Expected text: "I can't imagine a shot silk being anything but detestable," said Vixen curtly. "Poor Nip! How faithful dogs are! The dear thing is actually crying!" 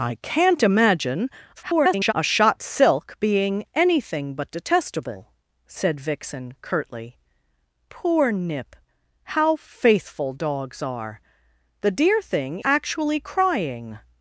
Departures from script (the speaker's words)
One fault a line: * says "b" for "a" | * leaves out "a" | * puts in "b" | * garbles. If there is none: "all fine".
* garbles
* leaves out "is"